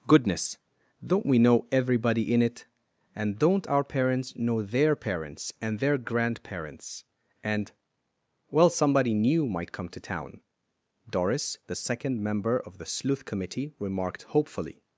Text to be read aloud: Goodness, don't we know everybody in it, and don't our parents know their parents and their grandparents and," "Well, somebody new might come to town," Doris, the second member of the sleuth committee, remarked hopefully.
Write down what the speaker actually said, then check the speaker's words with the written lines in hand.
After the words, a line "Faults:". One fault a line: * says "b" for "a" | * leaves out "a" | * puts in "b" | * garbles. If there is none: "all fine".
Goodness, don't we know everybody in it, and don't our parents know their parents and their grandparents and," "Well, somebody new might come to town," Doris, the second member of the sleuth committee, remarked hopefully.
Faults:
all fine